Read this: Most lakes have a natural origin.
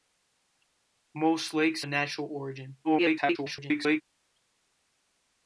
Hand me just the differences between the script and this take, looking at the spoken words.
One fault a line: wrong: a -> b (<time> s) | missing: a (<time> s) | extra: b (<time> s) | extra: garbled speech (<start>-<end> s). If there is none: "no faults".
missing: have (1.8 s)
extra: garbled speech (2.8-4.0 s)